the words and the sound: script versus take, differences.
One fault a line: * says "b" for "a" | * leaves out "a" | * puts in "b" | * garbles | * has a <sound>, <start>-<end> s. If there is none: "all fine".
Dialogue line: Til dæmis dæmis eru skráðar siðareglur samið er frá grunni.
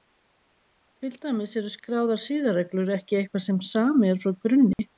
* leaves out "dæmis"
* puts in "ekki eitthvað sem"
* has a dropout, 4.7-4.8 s